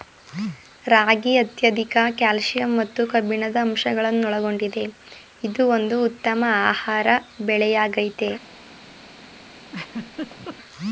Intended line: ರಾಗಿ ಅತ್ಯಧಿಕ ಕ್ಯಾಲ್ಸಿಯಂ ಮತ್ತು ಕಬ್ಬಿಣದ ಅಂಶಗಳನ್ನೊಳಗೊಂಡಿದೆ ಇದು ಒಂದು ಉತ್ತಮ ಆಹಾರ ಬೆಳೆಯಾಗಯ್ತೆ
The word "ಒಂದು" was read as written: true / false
true